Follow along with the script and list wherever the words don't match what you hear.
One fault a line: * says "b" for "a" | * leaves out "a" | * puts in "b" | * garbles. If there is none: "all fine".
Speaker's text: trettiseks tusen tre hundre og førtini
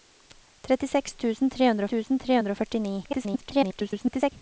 * puts in "tusen tre hundre"
* garbles